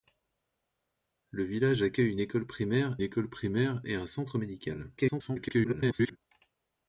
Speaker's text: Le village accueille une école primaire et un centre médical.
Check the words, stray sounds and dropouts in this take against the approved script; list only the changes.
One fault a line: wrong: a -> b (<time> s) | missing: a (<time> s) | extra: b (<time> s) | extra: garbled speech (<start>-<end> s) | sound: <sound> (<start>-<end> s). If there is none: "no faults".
extra: école primaire (3.0 s)
extra: garbled speech (5.0-6.2 s)